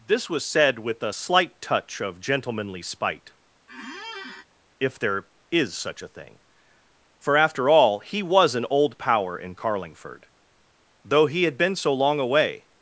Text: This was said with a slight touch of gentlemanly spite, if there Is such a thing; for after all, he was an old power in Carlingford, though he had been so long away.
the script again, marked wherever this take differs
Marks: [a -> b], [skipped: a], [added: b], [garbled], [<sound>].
This was said with a slight touch of gentlemanly spite, [squeak] if there Is such a thing; for after all, he was an old power in Carlingford, though he had been so long away.